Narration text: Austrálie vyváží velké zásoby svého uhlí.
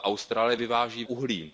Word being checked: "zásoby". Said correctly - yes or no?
no